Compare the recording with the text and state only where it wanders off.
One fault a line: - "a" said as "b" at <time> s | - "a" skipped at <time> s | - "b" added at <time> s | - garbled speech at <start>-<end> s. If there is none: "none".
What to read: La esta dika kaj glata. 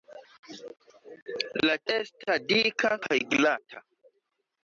none